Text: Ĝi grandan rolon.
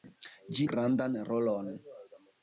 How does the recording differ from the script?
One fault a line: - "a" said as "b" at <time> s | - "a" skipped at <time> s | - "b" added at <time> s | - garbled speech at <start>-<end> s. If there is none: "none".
none